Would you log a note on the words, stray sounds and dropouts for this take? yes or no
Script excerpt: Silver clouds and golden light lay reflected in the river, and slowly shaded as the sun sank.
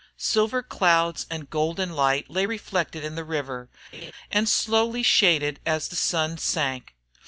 yes